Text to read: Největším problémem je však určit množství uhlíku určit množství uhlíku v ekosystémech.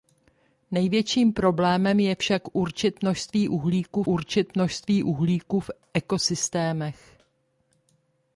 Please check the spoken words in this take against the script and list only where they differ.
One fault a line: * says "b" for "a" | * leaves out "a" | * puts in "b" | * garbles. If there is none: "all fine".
all fine